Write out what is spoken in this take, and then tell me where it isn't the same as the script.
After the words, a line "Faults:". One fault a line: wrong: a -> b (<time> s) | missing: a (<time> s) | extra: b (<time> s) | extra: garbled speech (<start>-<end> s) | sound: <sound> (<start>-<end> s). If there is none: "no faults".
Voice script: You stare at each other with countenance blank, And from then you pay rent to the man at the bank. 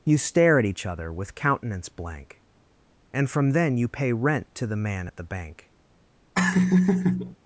You stare at each other with countenance blank, And from then you pay rent to the man at the bank.
Faults:
sound: laugh (6.3-7.4 s)